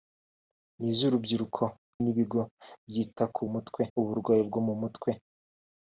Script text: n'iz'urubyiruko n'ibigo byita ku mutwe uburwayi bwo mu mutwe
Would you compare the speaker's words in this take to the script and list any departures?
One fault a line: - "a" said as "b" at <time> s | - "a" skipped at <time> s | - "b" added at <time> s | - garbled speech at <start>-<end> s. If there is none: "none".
none